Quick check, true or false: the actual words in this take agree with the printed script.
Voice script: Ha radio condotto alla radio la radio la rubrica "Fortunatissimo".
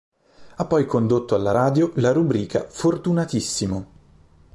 false